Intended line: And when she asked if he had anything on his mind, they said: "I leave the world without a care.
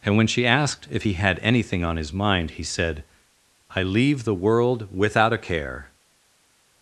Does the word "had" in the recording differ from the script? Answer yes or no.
no